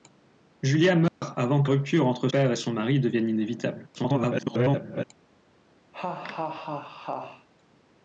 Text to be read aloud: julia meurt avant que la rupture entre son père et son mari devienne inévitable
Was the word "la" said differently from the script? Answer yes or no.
yes